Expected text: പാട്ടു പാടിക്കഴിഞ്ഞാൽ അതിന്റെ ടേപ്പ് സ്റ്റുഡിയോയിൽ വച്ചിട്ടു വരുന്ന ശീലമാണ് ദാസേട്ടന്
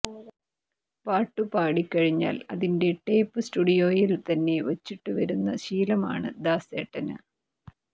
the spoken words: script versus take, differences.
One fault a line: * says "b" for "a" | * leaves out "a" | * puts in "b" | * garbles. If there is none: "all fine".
* puts in "തന്നെ"